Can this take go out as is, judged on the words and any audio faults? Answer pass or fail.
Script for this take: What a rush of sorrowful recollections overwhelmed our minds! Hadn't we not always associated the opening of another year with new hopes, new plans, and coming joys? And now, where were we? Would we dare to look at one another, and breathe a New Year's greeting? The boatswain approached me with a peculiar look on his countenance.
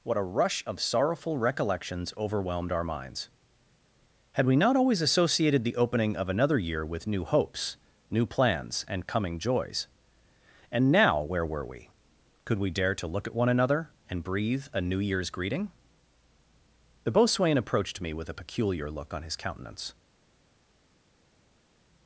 fail